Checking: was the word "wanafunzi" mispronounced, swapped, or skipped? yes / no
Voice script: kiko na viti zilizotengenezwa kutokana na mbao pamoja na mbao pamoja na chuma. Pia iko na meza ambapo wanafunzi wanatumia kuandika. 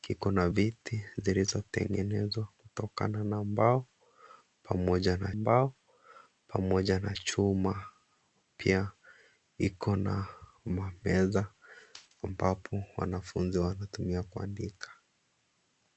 no